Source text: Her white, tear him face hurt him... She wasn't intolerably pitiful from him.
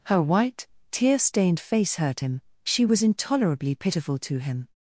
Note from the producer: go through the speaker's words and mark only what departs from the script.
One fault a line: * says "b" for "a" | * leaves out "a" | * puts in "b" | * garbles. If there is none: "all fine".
* says "stained" for "him"
* says "was" for "wasn't"
* says "to" for "from"